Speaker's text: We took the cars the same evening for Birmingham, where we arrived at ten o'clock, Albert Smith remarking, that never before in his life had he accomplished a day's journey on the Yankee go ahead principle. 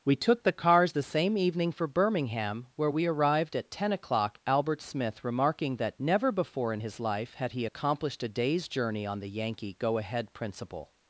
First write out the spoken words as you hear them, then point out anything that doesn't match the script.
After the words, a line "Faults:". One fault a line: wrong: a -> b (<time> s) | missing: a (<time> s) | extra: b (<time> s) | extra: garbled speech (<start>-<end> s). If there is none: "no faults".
We took the cars the same evening for Birmingham, where we arrived at ten o'clock, Albert Smith remarking, that never before in his life had he accomplished a day's journey on the Yankee go ahead principle.
Faults:
no faults